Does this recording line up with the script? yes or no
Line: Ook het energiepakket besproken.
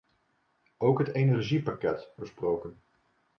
yes